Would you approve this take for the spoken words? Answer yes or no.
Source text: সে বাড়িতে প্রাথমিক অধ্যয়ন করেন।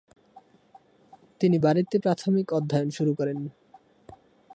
no